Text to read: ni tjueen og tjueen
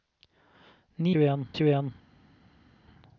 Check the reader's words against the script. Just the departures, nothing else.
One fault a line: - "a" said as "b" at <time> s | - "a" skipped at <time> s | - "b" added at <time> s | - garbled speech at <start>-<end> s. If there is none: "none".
none